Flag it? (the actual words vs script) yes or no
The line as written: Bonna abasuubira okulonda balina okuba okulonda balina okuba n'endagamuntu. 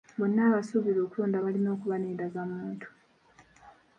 yes